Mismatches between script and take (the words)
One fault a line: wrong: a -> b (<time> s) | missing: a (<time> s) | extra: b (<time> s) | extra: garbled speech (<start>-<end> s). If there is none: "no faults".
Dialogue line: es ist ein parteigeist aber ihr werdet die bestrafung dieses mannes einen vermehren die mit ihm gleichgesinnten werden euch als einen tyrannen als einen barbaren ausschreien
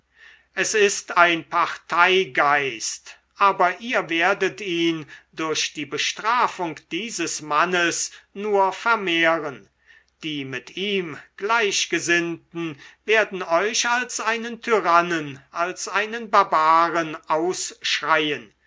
extra: ihn durch (4.6 s)
wrong: einen -> nur (8.3 s)